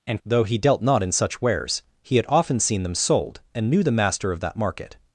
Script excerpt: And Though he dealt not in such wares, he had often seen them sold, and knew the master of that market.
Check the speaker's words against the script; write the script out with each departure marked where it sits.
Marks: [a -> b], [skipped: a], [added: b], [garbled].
And Though he dealt not in such wares, he had often seen them sold, and knew the master of that market.